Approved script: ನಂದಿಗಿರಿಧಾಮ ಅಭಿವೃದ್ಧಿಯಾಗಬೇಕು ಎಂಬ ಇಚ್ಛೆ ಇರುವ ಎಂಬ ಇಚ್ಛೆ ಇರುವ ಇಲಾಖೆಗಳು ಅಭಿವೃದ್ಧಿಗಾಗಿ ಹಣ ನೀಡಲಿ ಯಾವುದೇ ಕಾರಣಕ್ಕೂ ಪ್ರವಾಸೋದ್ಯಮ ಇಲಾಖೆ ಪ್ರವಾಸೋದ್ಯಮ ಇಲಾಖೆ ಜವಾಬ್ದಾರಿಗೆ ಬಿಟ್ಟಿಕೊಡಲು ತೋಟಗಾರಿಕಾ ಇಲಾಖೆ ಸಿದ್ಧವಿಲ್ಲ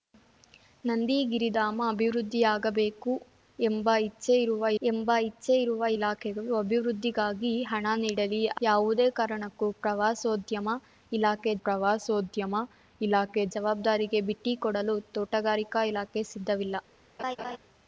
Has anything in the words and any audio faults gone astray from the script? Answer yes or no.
yes